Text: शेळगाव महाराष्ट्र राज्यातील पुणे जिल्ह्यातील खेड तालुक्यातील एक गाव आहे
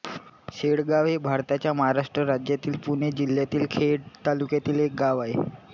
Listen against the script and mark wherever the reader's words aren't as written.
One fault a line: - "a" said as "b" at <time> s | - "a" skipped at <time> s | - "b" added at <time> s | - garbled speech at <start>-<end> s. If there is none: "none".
- "हे भारताच्या" added at 1.1 s